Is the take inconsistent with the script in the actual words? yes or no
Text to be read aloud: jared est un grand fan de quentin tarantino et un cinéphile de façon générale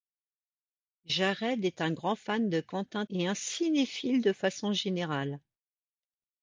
yes